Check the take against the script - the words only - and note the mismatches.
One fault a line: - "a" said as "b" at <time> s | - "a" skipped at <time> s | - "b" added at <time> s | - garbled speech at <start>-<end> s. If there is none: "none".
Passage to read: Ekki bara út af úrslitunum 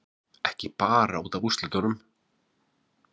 none